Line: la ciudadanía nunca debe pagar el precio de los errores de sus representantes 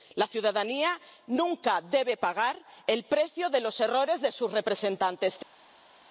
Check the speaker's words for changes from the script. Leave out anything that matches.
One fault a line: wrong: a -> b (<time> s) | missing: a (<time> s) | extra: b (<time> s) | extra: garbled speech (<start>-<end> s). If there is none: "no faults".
no faults